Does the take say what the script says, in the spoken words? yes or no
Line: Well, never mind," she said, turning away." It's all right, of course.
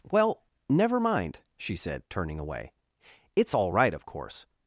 yes